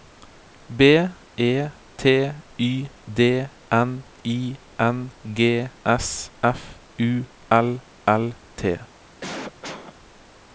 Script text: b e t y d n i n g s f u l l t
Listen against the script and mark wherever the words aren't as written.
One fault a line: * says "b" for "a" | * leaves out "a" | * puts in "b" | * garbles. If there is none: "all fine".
all fine